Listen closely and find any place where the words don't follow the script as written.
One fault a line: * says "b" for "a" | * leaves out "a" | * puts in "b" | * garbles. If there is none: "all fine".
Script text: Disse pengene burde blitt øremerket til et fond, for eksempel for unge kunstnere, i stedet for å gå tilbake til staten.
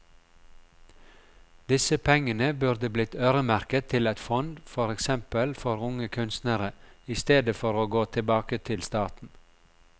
all fine